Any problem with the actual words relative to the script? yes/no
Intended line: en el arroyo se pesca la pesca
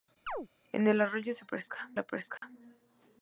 no